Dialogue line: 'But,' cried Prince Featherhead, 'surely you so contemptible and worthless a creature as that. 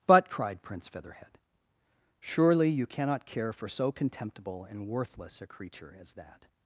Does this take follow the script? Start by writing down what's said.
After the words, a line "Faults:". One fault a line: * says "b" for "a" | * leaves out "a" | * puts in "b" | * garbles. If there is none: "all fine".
'But,' cried Prince Featherhead, 'surely you cannot care for so contemptible and worthless a creature as that.
Faults:
* puts in "cannot care for"